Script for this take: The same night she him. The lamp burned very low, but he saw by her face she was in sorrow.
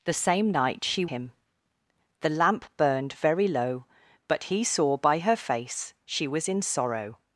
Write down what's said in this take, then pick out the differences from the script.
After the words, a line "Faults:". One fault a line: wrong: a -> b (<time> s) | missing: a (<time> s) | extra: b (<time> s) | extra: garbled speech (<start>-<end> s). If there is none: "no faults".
The same night she him. The lamp burned very low, but he saw by her face she was in sorrow.
Faults:
no faults